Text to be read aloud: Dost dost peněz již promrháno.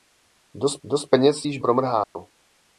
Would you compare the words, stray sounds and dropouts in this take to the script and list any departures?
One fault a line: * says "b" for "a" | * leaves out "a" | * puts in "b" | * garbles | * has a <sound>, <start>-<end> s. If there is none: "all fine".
* has a dropout, 2.0-2.2 s